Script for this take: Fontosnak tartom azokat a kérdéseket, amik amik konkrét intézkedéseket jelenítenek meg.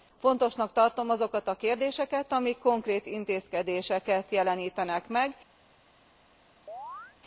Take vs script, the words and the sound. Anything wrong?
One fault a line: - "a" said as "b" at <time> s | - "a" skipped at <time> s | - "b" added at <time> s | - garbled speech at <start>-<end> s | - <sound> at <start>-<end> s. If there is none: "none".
- "amik" skipped at 2.6 s
- chirp at 6.7-7.2 s